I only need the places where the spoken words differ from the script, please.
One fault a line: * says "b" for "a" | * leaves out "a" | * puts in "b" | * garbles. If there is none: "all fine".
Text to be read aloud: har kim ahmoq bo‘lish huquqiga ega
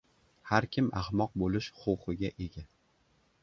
all fine